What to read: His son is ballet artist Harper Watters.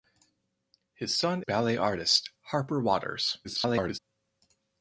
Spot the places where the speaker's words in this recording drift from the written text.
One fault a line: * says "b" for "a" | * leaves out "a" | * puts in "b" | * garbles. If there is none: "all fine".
* leaves out "is"
* garbles